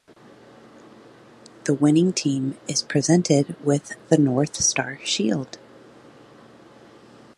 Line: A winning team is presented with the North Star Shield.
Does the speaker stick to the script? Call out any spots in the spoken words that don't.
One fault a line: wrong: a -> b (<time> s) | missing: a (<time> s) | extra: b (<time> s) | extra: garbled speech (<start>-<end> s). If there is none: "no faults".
wrong: A -> The (1.6 s)